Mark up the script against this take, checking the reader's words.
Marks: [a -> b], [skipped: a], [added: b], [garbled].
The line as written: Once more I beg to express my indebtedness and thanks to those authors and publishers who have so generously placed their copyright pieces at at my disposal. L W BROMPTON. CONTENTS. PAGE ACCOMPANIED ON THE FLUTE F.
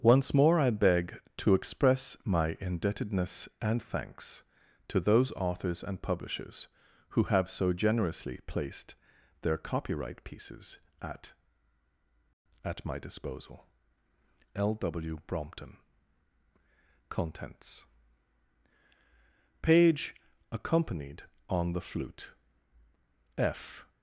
Once more I beg to express my indebtedness and thanks to those authors and publishers who have so generously placed their copyright pieces at at my disposal. L W BROMPTON. CONTENTS. PAGE ACCOMPANIED ON THE FLUTE F.